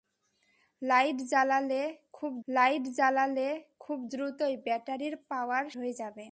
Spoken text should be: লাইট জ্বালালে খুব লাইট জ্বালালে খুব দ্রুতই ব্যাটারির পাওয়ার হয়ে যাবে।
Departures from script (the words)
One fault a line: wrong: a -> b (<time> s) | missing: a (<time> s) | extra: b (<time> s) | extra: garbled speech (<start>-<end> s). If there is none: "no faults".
no faults